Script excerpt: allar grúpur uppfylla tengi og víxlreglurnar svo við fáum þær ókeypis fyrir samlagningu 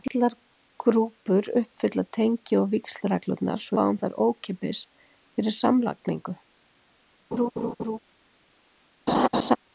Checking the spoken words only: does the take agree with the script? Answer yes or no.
no